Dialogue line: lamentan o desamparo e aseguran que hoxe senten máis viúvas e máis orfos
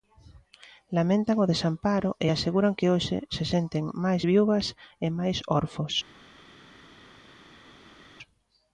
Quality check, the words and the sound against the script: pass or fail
fail